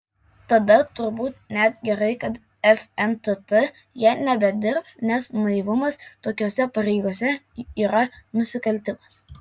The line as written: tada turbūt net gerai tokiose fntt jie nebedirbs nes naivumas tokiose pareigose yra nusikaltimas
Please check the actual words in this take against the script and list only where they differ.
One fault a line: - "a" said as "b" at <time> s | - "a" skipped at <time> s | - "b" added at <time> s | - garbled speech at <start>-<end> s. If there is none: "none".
- "tokiose" said as "kad" at 2.2 s